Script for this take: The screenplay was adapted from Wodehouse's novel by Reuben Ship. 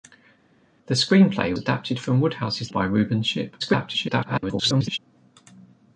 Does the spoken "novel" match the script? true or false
false